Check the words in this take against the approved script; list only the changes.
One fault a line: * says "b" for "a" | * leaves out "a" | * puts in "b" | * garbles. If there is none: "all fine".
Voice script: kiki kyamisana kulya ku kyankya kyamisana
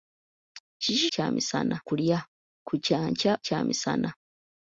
all fine